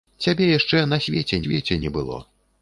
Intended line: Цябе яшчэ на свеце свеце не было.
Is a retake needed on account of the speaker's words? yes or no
no